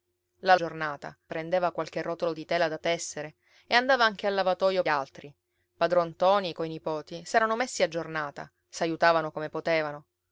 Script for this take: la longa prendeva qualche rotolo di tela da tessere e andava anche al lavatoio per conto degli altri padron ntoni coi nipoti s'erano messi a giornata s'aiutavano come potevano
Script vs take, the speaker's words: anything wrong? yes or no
yes